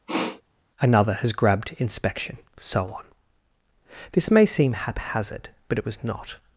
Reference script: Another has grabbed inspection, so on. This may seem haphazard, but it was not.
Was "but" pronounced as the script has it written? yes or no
yes